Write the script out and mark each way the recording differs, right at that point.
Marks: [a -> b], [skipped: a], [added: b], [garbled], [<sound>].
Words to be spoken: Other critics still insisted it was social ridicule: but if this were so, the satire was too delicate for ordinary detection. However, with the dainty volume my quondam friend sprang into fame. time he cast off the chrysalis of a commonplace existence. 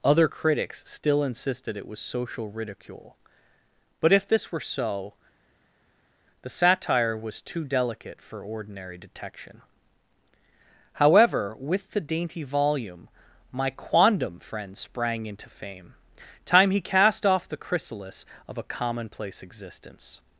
Other critics still insisted it was social ridicule: but if this were so, the satire was too delicate for ordinary detection. However, with the dainty volume my quondam friend sprang into fame. time he cast off the chrysalis of a commonplace existence.